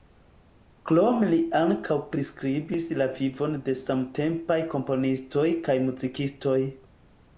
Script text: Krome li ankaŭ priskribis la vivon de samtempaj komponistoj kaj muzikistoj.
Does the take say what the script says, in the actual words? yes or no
yes